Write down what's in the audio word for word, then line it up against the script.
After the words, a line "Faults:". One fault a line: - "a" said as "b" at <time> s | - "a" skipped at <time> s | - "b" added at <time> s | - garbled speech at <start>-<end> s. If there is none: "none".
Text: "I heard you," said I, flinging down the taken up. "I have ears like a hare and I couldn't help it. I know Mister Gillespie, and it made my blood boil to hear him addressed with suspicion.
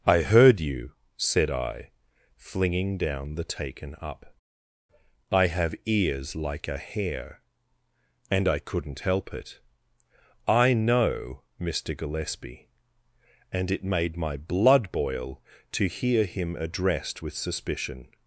"I heard you," said I, flinging down the taken up. "I have ears like a hare and I couldn't help it. I know Mister Gillespie, and it made my blood boil to hear him addressed with suspicion.
Faults:
none